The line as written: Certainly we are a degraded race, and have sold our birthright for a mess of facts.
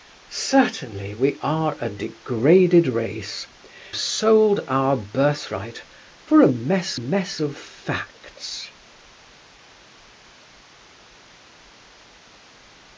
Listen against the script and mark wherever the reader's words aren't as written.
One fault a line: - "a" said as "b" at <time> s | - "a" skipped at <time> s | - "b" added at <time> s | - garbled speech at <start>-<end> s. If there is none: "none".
- "and have" skipped at 3.5 s
- "mess" added at 6.9 s